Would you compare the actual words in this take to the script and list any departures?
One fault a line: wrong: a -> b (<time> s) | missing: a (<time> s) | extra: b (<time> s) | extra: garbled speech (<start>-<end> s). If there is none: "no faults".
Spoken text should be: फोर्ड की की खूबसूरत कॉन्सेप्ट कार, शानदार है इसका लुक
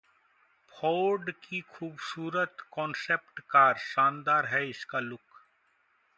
missing: की (1.6 s)